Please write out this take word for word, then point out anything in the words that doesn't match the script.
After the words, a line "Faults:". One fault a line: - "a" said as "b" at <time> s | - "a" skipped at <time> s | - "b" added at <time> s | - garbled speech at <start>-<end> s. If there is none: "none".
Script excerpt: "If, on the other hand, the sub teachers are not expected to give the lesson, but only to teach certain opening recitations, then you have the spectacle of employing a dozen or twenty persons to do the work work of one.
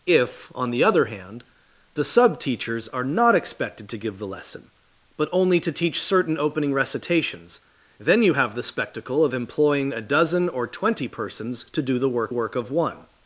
"If, on the other hand, the sub teachers are not expected to give the lesson, but only to teach certain opening recitations, then you have the spectacle of employing a dozen or twenty persons to do the work work of one.
Faults:
none